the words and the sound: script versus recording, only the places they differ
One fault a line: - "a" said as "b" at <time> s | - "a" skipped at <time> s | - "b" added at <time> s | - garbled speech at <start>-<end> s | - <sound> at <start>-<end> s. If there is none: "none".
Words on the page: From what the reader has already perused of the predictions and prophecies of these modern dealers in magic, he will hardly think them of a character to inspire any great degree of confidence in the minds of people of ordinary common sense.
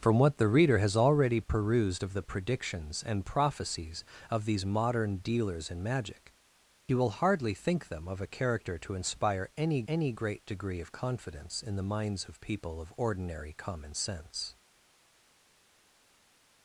- "any" added at 9.9 s